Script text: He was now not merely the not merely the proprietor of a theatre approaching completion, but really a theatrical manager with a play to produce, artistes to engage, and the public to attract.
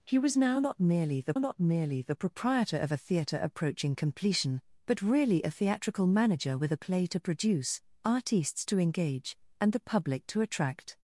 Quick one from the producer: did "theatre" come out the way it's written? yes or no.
yes